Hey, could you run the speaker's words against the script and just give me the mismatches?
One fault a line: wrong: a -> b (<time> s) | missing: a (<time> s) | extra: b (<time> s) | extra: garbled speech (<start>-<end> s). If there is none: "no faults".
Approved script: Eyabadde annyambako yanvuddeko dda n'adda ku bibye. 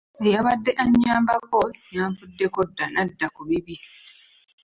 no faults